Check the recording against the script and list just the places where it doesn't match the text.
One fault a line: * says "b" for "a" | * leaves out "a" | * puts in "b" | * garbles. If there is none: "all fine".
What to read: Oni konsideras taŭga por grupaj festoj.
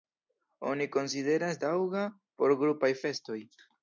all fine